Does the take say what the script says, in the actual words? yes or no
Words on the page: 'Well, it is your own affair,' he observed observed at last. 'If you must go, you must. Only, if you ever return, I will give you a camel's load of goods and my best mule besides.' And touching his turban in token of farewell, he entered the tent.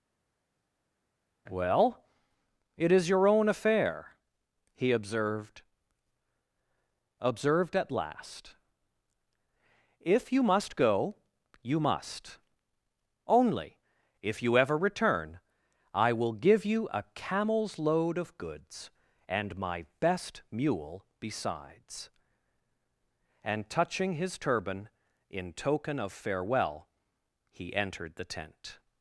yes